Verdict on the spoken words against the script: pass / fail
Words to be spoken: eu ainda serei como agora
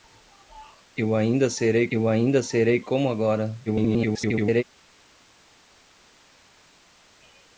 fail